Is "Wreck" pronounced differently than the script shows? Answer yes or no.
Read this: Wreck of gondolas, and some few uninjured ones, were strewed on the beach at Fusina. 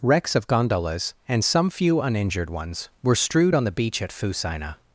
yes